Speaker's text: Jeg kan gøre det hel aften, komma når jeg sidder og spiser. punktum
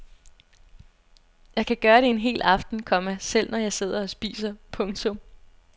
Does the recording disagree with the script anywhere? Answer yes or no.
yes